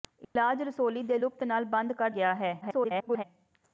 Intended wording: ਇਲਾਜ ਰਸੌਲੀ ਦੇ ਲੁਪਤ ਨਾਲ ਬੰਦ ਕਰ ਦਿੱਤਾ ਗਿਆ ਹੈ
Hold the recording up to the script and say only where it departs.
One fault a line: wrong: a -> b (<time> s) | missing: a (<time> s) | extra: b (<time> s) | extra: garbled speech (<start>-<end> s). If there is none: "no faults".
missing: ਦਿੱਤਾ (2.1 s)
extra: garbled speech (2.6-3.2 s)